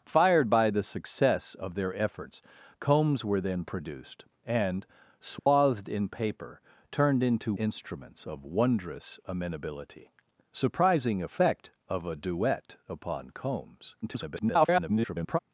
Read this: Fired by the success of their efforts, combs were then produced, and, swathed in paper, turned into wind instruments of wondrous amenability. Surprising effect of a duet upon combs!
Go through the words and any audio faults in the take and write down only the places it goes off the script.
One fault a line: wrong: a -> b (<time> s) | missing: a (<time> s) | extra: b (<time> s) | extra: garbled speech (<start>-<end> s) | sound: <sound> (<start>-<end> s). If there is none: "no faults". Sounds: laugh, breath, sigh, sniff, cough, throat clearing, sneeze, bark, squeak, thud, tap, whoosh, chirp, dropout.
sound: dropout (5.4-5.5 s)
missing: wind (7.5 s)
extra: garbled speech (14.0-15.4 s)